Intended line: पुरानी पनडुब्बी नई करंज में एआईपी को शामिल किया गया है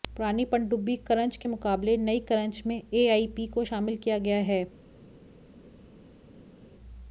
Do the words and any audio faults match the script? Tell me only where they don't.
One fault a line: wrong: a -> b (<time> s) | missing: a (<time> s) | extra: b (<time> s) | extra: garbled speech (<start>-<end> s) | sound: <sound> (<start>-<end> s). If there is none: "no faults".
extra: करंज के मुकाबले (1.1 s)